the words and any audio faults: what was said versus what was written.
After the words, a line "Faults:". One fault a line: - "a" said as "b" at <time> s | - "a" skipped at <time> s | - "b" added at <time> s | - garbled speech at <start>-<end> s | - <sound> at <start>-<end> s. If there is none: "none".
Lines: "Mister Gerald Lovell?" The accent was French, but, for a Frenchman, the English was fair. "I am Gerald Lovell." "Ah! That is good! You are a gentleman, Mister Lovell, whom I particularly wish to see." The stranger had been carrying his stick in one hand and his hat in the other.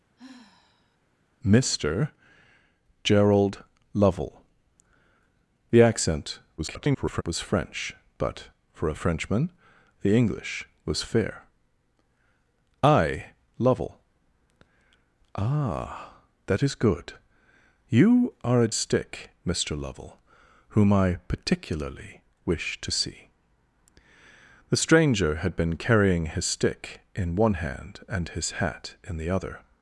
"Mister Gerald Lovell?" The accent [garbled] was French, but, for a Frenchman, the English was fair. "I Lovell." "Ah! That is good! You are a stick, Mister Lovell, whom I particularly wish to see." The stranger had been carrying his stick in one hand and his hat in the other.
Faults:
- sigh at 0.2-1.0 s
- garbled speech at 6.6-7.2 s
- "am Gerald" skipped at 13.3 s
- "gentleman" said as "stick" at 18.7 s